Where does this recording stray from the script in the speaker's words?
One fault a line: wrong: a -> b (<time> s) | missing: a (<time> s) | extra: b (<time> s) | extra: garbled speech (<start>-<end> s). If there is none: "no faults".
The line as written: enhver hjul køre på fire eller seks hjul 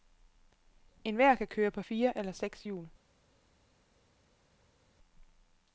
wrong: hjul -> kan (1.4 s)